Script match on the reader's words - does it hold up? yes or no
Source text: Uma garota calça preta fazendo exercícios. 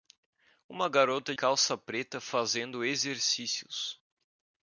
yes